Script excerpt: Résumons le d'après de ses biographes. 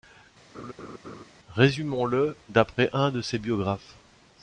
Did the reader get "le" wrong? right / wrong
right